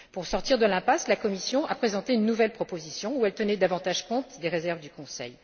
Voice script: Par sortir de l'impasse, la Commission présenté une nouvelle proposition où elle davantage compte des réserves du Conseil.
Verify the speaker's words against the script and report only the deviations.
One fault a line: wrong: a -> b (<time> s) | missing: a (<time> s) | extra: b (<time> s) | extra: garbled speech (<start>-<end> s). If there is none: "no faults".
wrong: Par -> Pour (0.1 s)
extra: a (1.6 s)
extra: tenait (3.3 s)